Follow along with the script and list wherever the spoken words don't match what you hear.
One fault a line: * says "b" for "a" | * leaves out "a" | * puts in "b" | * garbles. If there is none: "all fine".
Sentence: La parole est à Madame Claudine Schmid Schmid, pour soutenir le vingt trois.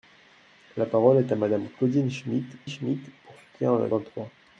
all fine